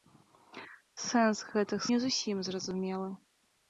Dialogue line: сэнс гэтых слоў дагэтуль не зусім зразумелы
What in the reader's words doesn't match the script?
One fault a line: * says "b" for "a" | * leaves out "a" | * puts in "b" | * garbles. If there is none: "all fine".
* leaves out "слоў дагэтуль"